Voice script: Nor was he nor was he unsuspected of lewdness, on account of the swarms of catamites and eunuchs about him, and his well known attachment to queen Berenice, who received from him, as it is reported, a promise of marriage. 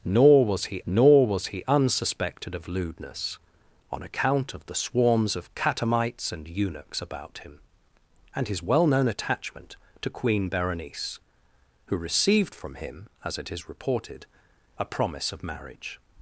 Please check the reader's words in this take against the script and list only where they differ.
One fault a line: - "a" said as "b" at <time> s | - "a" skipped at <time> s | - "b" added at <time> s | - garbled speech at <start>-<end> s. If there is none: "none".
none